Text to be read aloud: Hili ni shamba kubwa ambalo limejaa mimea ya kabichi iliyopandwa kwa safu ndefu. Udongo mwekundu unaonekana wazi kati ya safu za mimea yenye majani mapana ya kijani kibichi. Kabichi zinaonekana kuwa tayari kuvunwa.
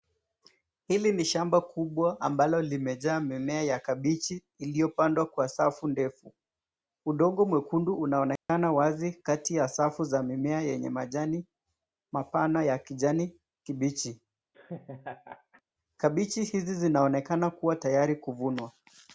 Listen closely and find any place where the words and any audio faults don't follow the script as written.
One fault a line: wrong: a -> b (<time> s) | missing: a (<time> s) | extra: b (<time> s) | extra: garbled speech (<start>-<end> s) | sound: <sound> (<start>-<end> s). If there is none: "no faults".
sound: dropout (8.4-8.5 s)
sound: laugh (14.5-15.6 s)
extra: hizi (16.4 s)